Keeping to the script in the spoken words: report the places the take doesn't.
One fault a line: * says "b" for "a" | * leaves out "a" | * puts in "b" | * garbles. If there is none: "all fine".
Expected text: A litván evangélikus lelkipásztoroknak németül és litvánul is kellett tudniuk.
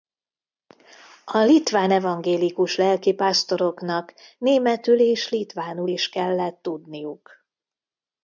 all fine